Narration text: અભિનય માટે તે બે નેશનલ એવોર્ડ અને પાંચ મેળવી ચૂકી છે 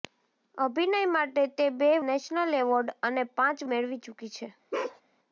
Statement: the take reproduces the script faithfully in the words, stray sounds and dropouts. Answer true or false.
false